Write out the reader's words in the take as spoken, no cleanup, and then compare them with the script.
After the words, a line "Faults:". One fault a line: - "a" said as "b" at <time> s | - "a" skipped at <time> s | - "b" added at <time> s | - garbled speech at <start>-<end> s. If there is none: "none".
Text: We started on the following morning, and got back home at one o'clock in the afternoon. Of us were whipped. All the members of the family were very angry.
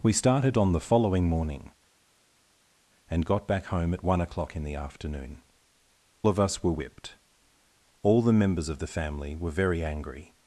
We started on the following morning, and got back home at one o'clock in the afternoon. Of us were whipped. All the members of the family were very angry.
Faults:
none